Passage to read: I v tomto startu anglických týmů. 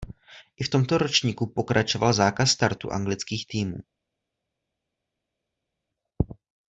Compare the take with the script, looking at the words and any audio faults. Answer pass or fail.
fail